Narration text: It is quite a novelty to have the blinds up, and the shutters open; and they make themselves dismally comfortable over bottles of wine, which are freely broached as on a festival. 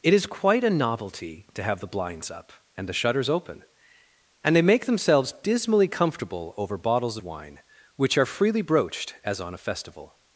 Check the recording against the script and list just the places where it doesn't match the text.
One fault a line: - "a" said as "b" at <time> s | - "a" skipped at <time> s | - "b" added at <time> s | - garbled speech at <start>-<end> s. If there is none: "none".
- "of" skipped at 7.2 s